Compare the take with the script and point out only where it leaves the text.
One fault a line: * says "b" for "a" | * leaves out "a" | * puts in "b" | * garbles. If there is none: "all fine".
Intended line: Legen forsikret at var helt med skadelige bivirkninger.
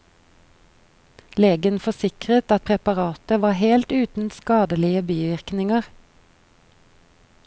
* puts in "preparatet"
* says "uten" for "med"